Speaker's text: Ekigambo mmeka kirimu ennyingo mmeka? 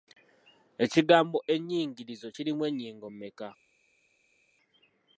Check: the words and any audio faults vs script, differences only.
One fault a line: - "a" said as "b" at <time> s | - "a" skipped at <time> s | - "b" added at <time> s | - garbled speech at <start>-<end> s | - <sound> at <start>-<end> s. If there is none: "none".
- "mmeka" said as "ennyingirizo" at 1.5 s